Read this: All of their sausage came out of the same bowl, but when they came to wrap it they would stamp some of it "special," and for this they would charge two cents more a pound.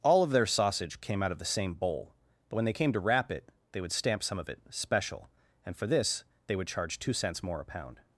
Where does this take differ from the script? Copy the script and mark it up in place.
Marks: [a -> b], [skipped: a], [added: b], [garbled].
All of their sausage came out of the same bowl, but when they came to wrap it they would stamp some of it "special," and for this they would charge two cents more a pound.